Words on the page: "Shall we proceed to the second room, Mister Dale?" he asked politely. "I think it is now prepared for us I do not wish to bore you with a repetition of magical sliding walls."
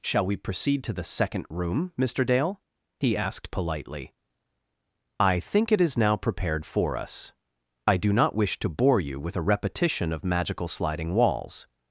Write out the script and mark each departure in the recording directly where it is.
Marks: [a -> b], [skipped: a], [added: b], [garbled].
"Shall we proceed to the second room, Mister Dale?" he asked politely. "I think it is now prepared for us I do not wish to bore you with a repetition of magical sliding walls."